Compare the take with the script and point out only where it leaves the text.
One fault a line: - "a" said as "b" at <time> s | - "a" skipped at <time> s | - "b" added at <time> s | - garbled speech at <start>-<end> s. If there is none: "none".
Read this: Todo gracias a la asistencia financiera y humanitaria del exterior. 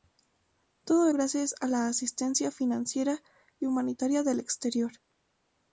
none